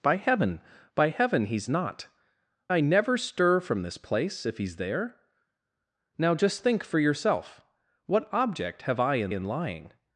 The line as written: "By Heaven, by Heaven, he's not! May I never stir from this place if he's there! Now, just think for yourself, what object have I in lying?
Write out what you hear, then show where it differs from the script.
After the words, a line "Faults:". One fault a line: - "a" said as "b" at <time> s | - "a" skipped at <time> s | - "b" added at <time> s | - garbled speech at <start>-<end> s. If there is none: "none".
"By Heaven, by Heaven, he's not! I never stir from this place if he's there! Now, just think for yourself, what object have I in in lying?
Faults:
- "May" skipped at 2.1 s
- "in" added at 9.3 s